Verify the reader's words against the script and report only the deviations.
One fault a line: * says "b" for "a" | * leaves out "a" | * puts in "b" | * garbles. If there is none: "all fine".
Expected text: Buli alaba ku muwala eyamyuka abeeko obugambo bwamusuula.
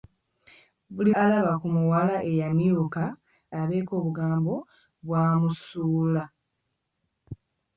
all fine